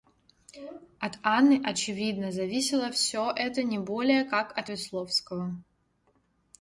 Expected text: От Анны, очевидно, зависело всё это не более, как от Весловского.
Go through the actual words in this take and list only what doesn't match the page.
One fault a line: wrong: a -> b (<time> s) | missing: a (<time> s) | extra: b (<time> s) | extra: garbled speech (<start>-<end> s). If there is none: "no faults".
no faults